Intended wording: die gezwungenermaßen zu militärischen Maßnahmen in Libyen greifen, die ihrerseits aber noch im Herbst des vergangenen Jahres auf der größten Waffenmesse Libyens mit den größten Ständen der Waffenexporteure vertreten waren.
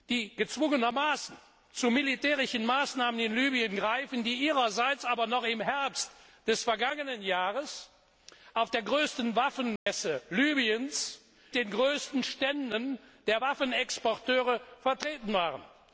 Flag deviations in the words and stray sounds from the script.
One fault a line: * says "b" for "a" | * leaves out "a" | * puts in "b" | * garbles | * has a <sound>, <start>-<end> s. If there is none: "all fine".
* has a dropout, 9.8-9.9 s
* leaves out "mit"